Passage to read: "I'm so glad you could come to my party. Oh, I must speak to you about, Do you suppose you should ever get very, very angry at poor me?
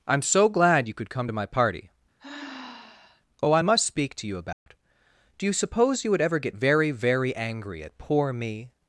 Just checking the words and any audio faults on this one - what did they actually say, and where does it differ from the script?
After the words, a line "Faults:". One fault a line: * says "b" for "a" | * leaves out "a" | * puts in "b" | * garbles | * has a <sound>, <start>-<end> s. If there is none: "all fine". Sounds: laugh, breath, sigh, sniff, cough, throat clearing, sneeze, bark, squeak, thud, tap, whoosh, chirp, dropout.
"I'm so glad you could come to my party. Oh, I must speak to you about, Do you suppose you would ever get very, very angry at poor me?
Faults:
* has a sigh, 2.2-3.2 s
* has a dropout, 4.5-4.7 s
* says "would" for "should"